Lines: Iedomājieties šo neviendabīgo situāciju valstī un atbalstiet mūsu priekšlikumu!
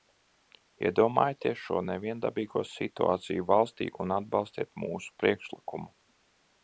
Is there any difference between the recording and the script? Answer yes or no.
no